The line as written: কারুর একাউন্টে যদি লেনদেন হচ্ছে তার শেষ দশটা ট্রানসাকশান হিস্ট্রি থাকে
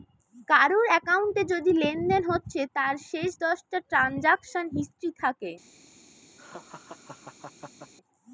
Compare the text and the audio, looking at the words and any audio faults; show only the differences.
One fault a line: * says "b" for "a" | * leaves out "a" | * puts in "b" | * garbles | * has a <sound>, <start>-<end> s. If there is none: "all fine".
* has a laugh, 6.4-7.9 s